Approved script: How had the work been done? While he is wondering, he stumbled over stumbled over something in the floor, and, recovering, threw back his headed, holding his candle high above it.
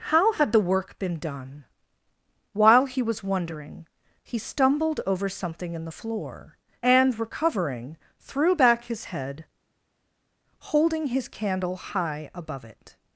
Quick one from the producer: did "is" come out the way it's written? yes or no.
no